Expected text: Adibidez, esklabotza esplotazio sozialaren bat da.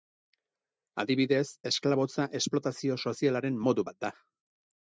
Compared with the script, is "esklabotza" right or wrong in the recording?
right